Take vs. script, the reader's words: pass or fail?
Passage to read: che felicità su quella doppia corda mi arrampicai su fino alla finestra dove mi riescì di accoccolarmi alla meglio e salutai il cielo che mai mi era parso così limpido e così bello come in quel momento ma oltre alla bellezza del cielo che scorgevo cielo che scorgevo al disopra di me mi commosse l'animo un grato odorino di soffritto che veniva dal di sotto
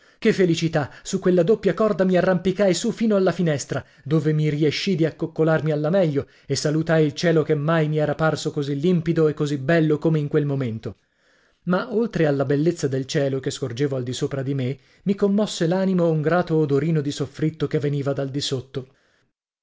fail